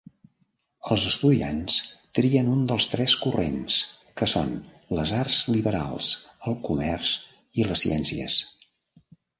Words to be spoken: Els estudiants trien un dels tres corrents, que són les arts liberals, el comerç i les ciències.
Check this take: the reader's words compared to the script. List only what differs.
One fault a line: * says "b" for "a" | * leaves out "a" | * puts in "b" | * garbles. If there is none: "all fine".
all fine